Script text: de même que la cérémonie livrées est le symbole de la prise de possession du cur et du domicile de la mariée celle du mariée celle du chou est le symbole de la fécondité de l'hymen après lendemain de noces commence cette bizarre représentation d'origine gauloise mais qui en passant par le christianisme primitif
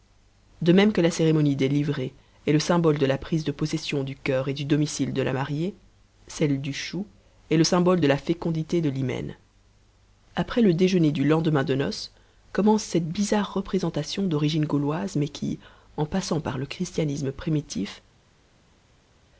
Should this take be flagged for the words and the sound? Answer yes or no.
yes